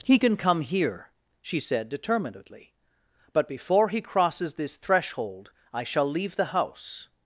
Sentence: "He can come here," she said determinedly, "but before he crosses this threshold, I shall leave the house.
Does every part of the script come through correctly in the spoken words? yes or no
yes